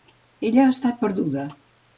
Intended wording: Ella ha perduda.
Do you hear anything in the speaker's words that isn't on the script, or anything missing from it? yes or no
yes